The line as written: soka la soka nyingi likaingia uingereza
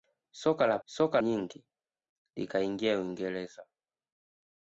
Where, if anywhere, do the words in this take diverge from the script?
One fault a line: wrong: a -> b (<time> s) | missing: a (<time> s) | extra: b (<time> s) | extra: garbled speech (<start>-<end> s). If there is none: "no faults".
no faults